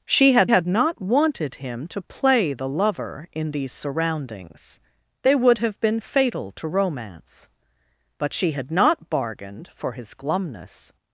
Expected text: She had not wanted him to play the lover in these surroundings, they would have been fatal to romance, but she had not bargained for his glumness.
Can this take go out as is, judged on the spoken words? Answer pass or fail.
fail